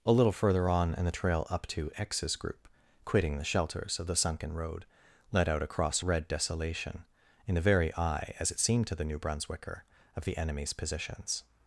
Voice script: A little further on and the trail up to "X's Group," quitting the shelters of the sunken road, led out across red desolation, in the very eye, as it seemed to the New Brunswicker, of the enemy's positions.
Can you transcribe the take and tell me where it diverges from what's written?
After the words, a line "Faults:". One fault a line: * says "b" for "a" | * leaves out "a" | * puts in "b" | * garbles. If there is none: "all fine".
A little further on and the trail up to "X's Group," quitting the shelters of the sunken road, led out across red desolation, in the very eye, as it seemed to the New Brunswicker, of the enemy's positions.
Faults:
all fine